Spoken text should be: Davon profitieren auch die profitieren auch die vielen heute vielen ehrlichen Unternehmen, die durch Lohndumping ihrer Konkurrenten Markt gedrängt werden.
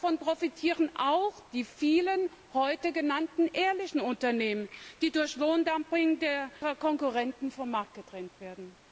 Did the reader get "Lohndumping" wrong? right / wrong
right